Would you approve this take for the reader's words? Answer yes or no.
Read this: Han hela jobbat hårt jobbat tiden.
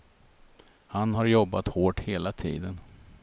no